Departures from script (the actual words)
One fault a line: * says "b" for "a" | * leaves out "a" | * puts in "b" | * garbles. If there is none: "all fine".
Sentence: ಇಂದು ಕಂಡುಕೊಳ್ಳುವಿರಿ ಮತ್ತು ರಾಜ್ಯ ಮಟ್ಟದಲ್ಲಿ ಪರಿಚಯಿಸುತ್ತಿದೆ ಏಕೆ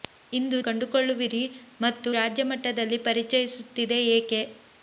all fine